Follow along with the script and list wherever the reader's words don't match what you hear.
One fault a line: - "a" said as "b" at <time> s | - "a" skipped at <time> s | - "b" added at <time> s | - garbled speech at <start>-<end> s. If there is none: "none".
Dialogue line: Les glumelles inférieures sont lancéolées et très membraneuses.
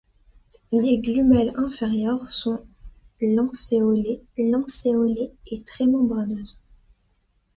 - "lancéolées" added at 4.4 s